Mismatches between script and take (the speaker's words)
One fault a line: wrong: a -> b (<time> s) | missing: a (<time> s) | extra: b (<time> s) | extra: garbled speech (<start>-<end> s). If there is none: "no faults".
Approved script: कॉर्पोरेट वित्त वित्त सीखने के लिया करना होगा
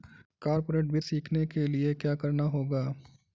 missing: वित्त (1.1 s)
extra: क्या (1.9 s)